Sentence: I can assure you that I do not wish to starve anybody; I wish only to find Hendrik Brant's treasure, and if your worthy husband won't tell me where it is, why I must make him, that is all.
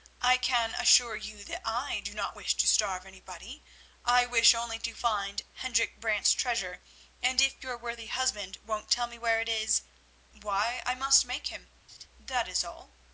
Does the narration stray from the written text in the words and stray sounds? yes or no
yes